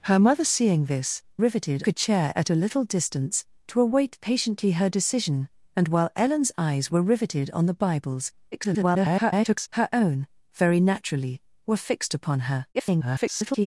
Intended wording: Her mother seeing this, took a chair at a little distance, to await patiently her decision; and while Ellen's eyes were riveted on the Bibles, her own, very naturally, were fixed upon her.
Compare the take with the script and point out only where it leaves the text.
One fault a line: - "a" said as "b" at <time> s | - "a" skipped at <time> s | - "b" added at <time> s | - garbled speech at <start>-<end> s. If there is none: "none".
- "took" said as "riveted" at 1.4 s
- garbled speech at 8.5-9.7 s
- garbled speech at 12.7-13.7 s